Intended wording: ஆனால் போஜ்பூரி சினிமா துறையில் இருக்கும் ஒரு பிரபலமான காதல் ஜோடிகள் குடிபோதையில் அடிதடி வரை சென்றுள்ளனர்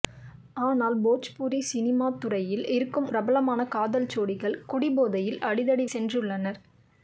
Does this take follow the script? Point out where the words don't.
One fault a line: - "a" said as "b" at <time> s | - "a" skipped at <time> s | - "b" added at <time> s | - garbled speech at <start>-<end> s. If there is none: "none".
- "ஒரு" skipped at 3.1 s
- "வரை" skipped at 5.9 s